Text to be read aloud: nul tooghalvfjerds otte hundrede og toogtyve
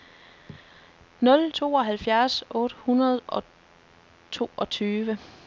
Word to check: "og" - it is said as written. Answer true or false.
true